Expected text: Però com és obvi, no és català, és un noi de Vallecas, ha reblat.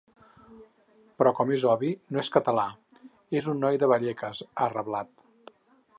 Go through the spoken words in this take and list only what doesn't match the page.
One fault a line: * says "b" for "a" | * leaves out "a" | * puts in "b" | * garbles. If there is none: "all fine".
all fine